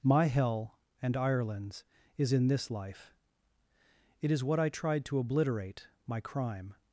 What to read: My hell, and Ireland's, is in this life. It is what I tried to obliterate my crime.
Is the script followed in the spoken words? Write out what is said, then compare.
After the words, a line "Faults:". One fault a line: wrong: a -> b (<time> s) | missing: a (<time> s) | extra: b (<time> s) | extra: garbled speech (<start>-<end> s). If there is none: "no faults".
My hell, and Ireland's, is in this life. It is what I tried to obliterate my crime.
Faults:
no faults